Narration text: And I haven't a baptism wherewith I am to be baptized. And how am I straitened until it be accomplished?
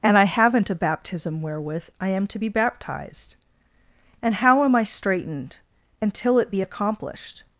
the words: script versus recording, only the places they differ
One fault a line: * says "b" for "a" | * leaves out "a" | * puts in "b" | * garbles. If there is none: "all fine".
all fine